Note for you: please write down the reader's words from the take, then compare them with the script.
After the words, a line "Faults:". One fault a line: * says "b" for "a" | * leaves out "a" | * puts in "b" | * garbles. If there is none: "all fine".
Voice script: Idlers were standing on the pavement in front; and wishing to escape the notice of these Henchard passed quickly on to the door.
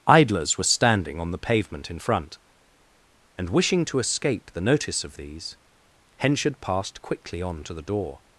Idlers were standing on the pavement in front; and wishing to escape the notice of these Henchard passed quickly on to the door.
Faults:
all fine